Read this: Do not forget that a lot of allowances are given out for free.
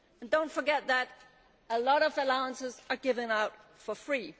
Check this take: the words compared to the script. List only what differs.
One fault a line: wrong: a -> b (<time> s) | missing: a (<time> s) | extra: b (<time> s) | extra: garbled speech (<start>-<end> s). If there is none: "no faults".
no faults